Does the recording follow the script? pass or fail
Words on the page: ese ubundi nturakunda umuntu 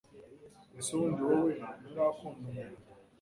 fail